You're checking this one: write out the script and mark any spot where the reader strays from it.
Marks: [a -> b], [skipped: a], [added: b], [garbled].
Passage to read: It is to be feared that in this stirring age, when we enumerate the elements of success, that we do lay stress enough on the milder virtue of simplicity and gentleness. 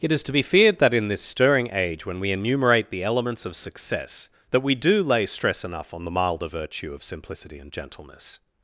It is to be feared that in this stirring age, when we enumerate the elements of success, that we do lay stress enough on the milder virtue of simplicity and gentleness.